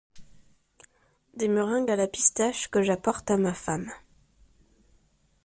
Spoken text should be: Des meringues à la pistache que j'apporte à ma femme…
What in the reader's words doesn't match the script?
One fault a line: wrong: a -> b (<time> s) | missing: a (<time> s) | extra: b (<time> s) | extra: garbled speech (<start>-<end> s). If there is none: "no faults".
no faults